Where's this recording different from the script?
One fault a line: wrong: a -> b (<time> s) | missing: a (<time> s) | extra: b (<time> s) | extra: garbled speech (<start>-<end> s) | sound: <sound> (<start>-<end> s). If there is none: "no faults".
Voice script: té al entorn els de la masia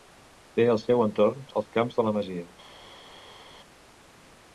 extra: seu (0.8 s)
extra: camps (1.8 s)